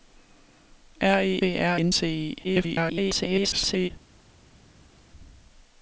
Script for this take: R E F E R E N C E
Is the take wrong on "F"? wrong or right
wrong